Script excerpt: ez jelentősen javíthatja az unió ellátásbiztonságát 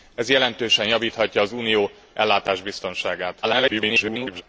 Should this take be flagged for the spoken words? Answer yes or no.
yes